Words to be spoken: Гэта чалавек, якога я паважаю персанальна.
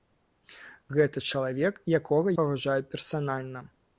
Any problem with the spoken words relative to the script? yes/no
yes